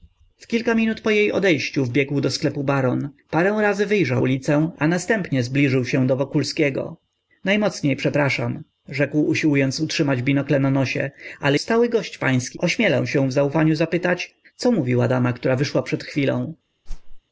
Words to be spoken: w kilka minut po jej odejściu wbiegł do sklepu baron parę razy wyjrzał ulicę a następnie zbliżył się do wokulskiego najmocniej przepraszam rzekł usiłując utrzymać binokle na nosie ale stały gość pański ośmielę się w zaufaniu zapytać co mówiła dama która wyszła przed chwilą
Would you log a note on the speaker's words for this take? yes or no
no